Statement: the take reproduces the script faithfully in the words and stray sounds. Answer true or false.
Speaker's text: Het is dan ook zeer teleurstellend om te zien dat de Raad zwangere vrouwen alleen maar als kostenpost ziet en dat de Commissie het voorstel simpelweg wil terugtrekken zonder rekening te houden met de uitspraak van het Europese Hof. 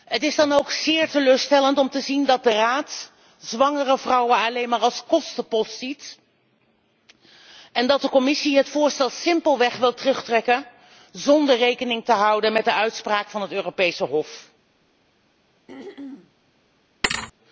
false